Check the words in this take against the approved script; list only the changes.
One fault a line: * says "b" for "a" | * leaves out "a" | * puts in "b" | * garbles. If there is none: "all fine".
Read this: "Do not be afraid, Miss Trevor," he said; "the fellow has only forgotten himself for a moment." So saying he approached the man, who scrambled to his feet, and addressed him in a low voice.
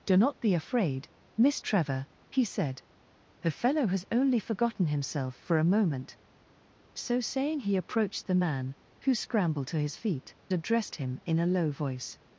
* leaves out "and"